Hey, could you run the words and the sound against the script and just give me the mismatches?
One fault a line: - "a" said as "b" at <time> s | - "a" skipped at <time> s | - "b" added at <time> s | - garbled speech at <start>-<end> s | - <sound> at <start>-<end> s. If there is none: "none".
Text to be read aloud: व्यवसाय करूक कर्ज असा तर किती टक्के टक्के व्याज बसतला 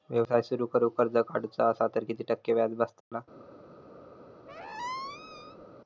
- "सुरु" added at 0.4 s
- "काढूचा" added at 1.3 s
- "टक्के" skipped at 2.5 s
- dropout at 3.0-3.1 s
- squeak at 4.5-5.6 s